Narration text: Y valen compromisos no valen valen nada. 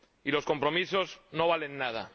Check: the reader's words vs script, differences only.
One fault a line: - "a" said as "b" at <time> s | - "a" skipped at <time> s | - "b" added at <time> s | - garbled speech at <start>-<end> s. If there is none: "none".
- "valen" said as "los" at 0.3 s
- "valen" skipped at 1.8 s